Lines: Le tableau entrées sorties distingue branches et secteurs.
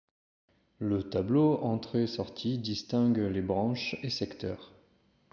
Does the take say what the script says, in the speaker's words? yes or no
no